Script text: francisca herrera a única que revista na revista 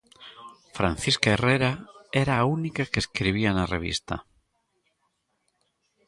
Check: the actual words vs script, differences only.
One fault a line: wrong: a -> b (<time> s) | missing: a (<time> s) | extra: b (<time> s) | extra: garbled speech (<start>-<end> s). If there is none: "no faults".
extra: era (2.2 s)
wrong: revista -> escribía (3.0 s)